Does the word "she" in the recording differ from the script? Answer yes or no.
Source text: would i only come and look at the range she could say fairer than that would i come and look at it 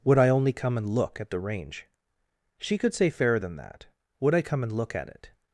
no